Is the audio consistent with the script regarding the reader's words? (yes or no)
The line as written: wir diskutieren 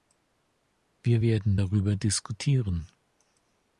no